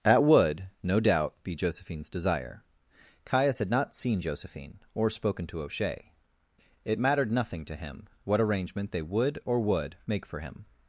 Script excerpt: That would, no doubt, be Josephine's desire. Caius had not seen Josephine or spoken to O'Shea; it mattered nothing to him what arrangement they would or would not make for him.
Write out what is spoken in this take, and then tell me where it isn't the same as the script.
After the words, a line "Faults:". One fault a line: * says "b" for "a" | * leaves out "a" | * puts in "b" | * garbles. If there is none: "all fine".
That would, no doubt, be Josephine's desire. Caius had not seen Josephine or spoken to O'Shea; it mattered nothing to him what arrangement they would or would make for him.
Faults:
* leaves out "not"